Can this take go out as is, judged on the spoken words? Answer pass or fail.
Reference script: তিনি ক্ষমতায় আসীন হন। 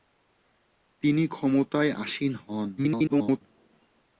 fail